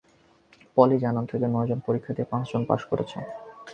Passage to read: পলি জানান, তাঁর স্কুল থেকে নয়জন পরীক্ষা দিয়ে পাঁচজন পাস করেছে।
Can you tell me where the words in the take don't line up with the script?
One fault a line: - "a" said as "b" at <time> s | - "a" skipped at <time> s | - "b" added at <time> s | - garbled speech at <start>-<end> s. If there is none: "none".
- "তাঁর স্কুল" skipped at 1.2 s